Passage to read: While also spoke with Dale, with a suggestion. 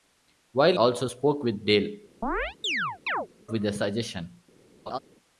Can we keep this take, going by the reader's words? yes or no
yes